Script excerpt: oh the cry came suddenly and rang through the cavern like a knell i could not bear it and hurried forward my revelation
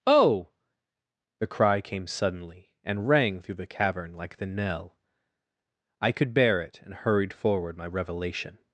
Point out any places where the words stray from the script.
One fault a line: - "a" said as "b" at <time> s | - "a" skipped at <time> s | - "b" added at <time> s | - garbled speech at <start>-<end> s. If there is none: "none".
- "a" said as "the" at 4.4 s
- "not" skipped at 6.3 s